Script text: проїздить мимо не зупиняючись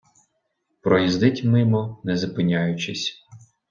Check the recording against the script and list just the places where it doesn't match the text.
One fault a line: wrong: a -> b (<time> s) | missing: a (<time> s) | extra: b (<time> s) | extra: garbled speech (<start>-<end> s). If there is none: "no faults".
no faults